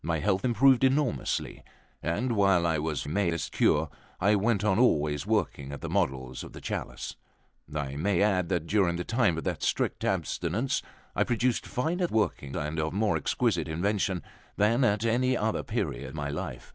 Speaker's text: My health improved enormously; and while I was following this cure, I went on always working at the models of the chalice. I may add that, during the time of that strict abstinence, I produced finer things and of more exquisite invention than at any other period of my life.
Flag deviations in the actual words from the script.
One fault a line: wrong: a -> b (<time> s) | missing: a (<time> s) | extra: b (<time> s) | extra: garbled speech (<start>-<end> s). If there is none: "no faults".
wrong: following -> may (3.1 s)
wrong: things -> working (12.1 s)
missing: of (16.2 s)